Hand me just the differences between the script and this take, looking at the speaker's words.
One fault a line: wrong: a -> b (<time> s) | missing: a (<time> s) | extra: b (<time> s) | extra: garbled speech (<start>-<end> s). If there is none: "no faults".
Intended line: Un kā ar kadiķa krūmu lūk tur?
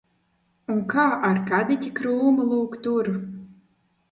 no faults